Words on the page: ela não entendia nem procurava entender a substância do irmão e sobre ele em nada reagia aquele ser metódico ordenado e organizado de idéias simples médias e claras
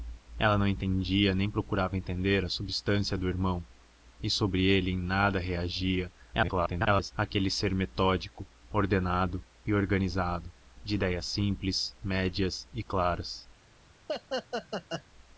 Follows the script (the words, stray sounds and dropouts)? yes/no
no